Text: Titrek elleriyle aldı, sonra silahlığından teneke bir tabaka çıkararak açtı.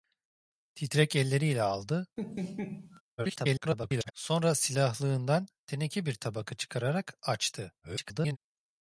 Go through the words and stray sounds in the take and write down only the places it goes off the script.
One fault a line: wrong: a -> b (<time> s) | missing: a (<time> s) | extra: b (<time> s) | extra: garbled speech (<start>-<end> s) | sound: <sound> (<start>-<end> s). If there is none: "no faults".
sound: laugh (2.2-3.0 s)
extra: garbled speech (3.2-4.1 s)
extra: garbled speech (7.8-8.4 s)